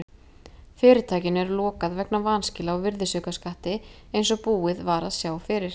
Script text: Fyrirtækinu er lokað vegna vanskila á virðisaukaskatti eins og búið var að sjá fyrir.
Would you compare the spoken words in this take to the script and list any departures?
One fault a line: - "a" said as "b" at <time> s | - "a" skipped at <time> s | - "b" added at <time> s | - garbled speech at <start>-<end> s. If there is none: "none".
none